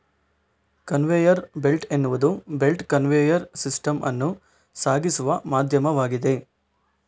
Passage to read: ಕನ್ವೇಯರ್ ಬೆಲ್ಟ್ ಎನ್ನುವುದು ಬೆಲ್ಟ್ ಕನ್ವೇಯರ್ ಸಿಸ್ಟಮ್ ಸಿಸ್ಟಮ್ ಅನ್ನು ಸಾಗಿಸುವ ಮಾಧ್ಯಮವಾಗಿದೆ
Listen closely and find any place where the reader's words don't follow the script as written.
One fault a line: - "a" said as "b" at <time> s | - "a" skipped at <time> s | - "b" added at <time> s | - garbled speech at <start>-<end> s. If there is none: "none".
- "ಸಿಸ್ಟಮ್" skipped at 4.0 s